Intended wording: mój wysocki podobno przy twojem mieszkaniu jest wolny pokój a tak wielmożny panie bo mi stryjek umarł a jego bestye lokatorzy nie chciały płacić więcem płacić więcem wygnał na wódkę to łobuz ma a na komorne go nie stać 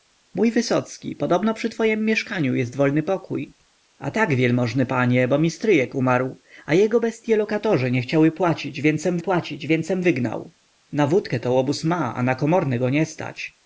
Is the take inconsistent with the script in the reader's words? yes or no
no